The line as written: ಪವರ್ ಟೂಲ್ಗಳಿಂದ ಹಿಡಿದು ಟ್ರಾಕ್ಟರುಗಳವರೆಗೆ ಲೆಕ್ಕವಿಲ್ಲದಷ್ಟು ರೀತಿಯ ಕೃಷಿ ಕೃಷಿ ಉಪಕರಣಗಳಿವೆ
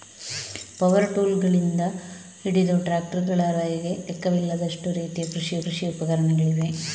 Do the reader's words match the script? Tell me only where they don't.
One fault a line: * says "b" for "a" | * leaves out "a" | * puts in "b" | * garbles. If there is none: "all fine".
all fine